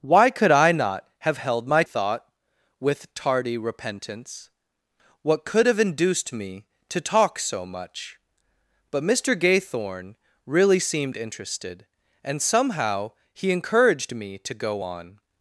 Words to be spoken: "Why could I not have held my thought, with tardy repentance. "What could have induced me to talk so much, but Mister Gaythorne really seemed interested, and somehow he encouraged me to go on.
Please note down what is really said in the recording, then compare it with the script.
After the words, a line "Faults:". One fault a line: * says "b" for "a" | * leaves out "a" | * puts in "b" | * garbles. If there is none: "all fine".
"Why could I not have held my thought, with tardy repentance. "What could have induced me to talk so much, but Mister Gaythorne really seemed interested, and somehow he encouraged me to go on.
Faults:
all fine